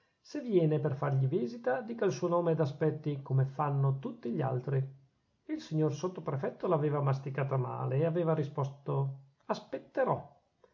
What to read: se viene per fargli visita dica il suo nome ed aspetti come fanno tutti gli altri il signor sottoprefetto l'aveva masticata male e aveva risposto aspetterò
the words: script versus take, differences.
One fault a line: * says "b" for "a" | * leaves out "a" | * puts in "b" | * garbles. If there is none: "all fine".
all fine